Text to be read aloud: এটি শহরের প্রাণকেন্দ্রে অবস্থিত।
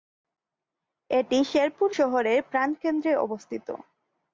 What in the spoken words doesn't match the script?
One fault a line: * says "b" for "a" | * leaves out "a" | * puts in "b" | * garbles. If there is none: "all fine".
* puts in "শেরপুর"